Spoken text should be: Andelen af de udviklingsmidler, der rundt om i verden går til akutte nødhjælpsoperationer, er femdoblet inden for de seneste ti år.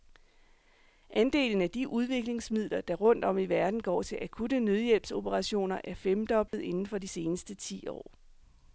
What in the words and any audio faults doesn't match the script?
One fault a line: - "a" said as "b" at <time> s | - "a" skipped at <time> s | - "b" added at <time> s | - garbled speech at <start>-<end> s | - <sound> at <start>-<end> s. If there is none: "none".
- dropout at 6.5-6.5 s